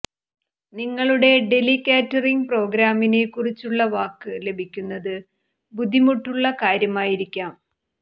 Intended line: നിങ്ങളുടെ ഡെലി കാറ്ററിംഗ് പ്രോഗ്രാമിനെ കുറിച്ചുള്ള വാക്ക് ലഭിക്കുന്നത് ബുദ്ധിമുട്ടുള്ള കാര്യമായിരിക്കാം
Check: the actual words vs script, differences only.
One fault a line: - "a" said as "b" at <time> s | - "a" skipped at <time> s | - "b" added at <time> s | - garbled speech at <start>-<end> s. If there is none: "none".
none